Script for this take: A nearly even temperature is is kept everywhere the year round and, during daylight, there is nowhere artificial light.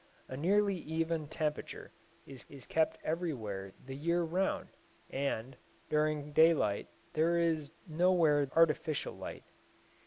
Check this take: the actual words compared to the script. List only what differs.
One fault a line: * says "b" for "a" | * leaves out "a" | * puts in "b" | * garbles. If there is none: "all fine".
all fine